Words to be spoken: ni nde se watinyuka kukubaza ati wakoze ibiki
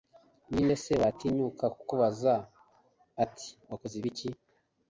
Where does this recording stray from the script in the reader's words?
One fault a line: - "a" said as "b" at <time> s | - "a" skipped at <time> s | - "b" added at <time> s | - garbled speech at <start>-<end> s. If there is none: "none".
none